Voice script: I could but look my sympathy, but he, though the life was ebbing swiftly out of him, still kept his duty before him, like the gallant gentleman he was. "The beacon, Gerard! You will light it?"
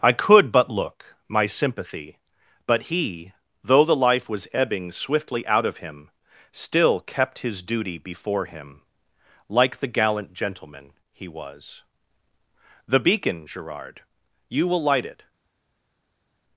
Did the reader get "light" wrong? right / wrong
right